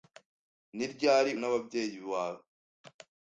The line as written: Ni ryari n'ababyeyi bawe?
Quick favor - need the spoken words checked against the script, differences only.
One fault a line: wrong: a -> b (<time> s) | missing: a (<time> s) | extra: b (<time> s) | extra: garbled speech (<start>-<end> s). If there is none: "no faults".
no faults